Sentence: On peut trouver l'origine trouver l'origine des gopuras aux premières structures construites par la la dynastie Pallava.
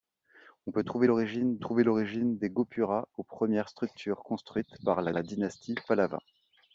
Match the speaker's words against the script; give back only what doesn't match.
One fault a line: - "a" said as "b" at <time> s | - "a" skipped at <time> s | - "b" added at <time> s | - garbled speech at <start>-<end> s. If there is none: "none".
none